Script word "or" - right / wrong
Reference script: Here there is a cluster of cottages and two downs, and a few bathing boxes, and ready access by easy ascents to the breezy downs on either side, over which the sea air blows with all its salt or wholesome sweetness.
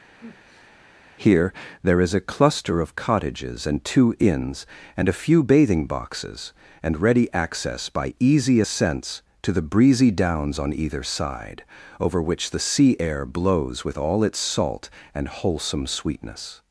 wrong